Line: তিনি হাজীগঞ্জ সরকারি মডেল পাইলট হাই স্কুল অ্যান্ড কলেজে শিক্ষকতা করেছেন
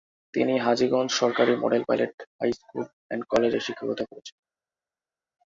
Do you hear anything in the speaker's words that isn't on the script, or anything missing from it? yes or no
no